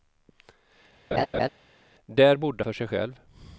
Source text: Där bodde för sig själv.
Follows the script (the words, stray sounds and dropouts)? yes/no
no